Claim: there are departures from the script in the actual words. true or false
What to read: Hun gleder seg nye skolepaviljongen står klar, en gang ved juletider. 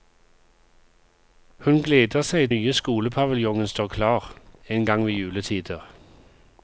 false